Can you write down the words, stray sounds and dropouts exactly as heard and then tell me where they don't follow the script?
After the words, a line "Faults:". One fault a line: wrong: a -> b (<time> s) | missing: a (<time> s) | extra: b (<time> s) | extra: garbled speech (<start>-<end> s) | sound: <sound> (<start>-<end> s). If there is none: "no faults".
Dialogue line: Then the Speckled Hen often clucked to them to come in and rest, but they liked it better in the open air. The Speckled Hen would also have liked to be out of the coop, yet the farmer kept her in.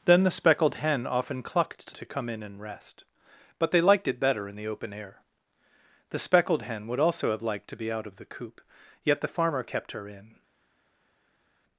Then the Speckled Hen often clucked to to come in and rest, but they liked it better in the open air. The Speckled Hen would also have liked to be out of the coop, yet the farmer kept her in.
Faults:
missing: them (2.0 s)